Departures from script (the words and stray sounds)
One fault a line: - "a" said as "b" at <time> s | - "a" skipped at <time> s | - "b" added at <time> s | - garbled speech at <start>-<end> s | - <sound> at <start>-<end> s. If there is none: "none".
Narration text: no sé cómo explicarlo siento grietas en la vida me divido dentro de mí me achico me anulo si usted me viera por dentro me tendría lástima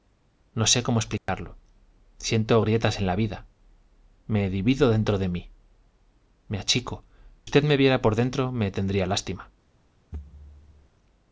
- dropout at 1.2-1.3 s
- "me anulo si" skipped at 7.0 s
- thud at 10.1-10.9 s